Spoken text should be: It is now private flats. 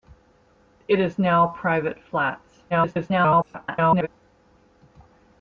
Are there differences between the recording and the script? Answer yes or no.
yes